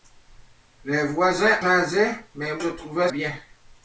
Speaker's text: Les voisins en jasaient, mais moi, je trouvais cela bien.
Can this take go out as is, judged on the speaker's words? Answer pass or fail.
fail